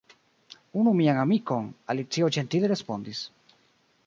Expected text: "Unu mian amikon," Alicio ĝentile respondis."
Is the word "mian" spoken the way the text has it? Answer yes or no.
yes